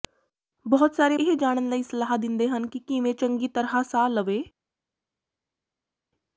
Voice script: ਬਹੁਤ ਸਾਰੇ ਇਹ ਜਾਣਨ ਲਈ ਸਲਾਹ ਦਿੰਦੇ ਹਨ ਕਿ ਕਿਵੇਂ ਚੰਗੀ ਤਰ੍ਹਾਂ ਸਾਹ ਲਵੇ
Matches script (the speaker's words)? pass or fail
pass